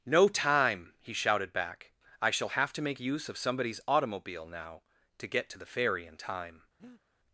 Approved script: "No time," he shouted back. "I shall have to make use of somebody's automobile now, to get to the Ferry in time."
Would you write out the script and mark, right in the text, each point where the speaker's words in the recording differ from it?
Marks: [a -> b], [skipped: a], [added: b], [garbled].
"No time," he shouted back. "I shall have to make use of somebody's automobile now, to get to the Ferry in time."